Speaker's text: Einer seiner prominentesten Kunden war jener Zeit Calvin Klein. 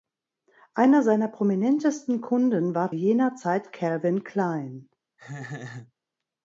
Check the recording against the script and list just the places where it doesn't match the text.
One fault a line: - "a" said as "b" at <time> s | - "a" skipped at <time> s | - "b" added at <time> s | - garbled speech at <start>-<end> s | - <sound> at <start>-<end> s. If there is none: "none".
- laugh at 5.2-5.9 s